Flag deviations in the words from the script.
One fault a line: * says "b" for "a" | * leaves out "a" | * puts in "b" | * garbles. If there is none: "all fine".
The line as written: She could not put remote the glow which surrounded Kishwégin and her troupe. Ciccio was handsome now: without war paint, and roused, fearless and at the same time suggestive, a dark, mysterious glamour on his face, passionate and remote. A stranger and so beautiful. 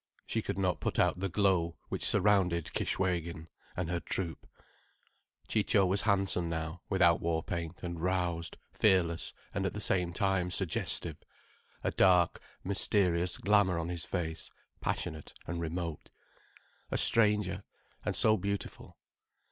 * says "out" for "remote"